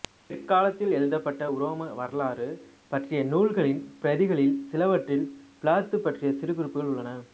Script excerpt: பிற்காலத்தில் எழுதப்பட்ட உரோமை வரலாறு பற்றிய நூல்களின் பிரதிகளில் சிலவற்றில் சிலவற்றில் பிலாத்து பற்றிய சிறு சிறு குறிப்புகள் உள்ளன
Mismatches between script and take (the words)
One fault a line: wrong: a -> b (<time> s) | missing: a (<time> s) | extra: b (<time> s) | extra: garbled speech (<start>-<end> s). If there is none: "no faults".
missing: சிலவற்றில் (5.3 s)
missing: சிறு (6.5 s)